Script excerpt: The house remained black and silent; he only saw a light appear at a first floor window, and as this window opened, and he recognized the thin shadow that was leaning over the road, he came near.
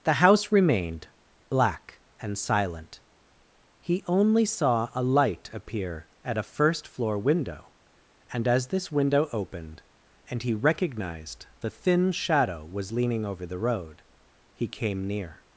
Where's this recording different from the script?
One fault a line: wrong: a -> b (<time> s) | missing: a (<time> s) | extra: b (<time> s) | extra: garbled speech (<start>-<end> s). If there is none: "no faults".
missing: that (12.7 s)